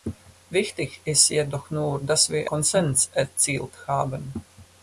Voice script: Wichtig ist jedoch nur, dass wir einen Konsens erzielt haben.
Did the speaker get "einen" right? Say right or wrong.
wrong